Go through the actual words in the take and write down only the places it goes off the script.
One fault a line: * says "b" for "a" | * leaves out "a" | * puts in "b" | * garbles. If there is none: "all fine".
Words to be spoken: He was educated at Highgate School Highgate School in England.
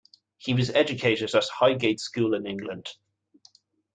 * leaves out "Highgate School"